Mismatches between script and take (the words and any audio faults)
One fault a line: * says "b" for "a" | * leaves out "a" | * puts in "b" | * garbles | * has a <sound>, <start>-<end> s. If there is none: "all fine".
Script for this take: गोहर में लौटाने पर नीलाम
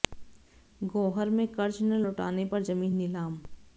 * puts in "कर्ज न"
* puts in "जमीन"